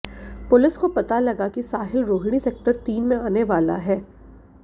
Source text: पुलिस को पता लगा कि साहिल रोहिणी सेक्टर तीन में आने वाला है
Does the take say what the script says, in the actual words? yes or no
yes